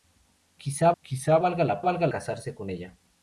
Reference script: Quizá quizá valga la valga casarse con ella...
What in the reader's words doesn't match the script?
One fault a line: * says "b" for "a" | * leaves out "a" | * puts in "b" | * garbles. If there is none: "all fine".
all fine